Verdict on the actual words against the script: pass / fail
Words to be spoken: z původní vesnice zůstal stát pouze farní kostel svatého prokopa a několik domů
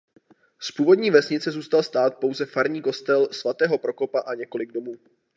pass